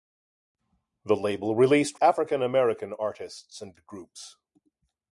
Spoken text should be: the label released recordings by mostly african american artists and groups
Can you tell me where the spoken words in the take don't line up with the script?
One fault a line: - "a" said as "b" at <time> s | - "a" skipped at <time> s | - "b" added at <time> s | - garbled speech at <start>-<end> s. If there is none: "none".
- "recordings by mostly" skipped at 2.0 s